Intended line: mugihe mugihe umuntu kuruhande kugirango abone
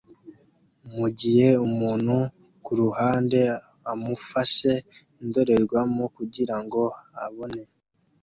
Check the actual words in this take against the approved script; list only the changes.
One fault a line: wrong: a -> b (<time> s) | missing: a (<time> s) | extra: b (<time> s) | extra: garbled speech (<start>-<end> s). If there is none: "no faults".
missing: mugihe (1.5 s)
extra: amufashe indorerwamo (3.9 s)